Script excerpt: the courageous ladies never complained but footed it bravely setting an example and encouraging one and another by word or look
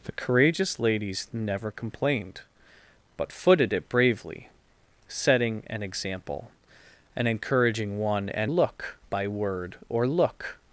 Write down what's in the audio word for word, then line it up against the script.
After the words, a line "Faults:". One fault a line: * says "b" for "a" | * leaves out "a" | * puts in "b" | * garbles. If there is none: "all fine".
the courageous ladies never complained but footed it bravely setting an example and encouraging one and look by word or look
Faults:
* says "look" for "another"